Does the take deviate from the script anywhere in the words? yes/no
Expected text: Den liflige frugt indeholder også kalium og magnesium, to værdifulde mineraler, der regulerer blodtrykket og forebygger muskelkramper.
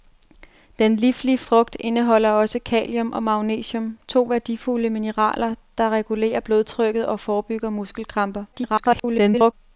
yes